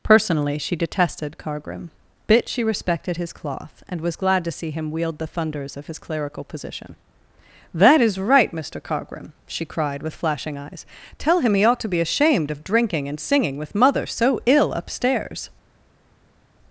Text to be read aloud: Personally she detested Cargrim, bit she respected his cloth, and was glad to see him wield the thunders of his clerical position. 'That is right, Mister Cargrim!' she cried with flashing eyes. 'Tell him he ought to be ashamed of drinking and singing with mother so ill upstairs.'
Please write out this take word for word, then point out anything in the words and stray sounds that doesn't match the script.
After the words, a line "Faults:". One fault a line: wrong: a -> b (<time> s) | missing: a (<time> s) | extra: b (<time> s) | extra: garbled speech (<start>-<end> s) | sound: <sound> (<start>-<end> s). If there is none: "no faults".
Personally she detested Cargrim, bit she respected his cloth, and was glad to see him wield the thunders of his clerical position. 'That is right, Mister Cargrim!' she cried with flashing eyes. 'Tell him he ought to be ashamed of drinking and singing with mother so ill upstairs.'
Faults:
no faults